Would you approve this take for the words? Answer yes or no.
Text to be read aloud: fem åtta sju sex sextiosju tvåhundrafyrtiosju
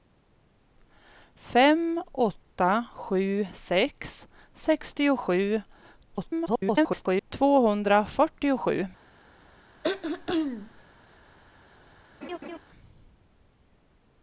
no